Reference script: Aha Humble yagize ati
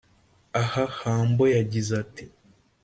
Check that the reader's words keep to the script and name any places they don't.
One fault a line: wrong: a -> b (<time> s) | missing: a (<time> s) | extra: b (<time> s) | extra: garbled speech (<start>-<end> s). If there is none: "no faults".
no faults